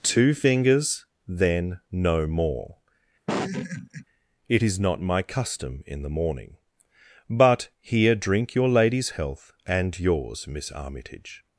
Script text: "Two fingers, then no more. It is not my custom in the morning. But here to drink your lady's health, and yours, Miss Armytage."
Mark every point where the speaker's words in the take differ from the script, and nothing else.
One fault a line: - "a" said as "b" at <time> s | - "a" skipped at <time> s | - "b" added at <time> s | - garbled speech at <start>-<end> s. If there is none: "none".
- "to" skipped at 8.1 s